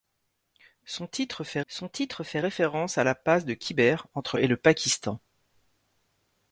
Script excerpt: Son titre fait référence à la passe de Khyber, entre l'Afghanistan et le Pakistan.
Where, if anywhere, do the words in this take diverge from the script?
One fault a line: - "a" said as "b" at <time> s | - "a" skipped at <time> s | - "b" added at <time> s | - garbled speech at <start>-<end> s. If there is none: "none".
- "son titre fait" added at 1.7 s
- "l'Afghanistan" skipped at 4.4 s